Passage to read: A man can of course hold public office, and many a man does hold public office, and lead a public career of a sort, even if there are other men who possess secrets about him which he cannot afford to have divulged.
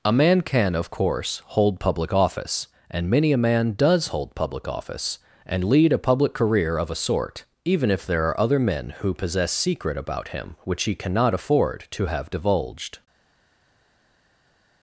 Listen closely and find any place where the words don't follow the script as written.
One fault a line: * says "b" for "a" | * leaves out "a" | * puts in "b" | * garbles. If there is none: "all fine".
* says "secret" for "secrets"